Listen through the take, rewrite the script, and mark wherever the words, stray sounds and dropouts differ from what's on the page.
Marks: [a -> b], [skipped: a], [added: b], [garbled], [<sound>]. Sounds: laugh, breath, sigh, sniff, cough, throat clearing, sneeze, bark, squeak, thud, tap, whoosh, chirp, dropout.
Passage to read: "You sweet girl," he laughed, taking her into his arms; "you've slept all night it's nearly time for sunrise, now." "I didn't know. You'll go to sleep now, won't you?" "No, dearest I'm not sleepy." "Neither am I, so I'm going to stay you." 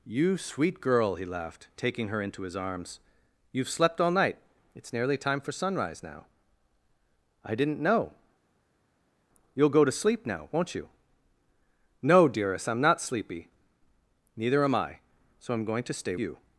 "You sweet girl," he laughed, taking her into his arms; "you've slept all night it's nearly time for sunrise, now." "I didn't know. You'll go to sleep now, won't you?" "No, dearest I'm not sleepy." "Neither am I, so I'm going to stay you."